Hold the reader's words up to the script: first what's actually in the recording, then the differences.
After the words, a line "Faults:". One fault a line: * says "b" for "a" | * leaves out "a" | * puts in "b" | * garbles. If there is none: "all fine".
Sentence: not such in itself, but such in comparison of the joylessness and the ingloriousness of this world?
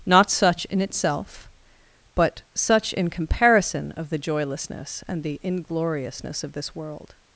not such in itself, but such in comparison of the joylessness and the ingloriousness of this world?
Faults:
all fine